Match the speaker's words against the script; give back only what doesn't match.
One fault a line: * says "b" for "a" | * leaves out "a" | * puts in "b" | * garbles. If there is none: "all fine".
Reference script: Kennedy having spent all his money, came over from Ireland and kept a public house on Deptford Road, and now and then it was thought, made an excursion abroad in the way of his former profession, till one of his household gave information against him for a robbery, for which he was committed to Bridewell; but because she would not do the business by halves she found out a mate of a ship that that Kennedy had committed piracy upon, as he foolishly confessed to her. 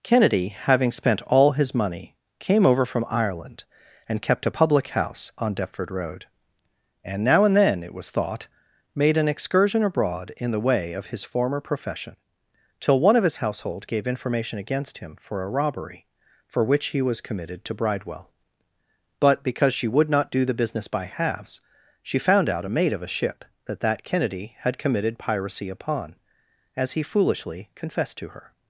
all fine